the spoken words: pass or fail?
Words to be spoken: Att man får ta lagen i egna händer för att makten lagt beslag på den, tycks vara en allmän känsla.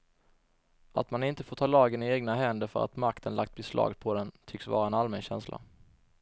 fail